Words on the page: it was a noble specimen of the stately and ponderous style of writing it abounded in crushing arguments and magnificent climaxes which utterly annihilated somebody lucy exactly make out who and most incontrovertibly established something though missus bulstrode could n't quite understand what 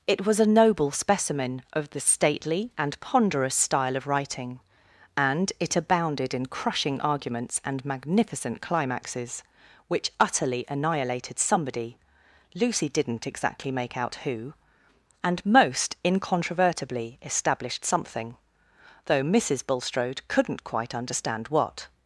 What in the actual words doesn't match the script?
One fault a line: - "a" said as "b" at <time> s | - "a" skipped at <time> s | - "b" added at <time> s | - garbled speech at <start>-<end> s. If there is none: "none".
- "and" added at 5.2 s
- "did n't" added at 12.9 s